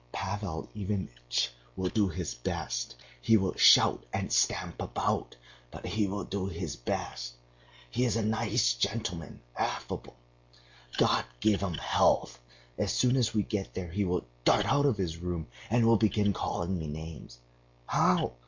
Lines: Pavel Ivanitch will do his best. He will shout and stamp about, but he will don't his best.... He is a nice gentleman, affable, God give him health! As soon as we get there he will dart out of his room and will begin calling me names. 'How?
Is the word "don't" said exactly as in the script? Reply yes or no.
no